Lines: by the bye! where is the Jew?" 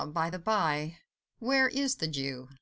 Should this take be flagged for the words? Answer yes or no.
no